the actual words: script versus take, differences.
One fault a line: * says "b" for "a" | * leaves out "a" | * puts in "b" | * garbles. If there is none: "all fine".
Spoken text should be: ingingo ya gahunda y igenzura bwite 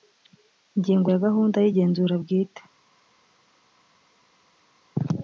all fine